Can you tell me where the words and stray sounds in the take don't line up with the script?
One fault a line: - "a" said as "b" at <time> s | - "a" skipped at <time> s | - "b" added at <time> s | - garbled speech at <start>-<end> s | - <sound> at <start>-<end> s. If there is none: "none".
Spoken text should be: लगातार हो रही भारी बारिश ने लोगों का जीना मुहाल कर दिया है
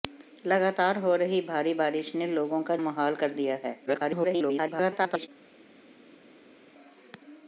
- "जीना" skipped at 2.8 s
- garbled speech at 3.9-5.3 s